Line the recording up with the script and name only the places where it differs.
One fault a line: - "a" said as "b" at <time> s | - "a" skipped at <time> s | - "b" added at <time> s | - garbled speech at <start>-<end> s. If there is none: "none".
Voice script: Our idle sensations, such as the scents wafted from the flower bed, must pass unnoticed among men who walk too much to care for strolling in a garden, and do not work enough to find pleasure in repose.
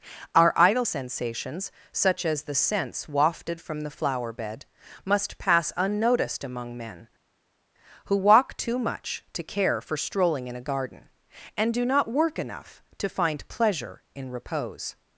none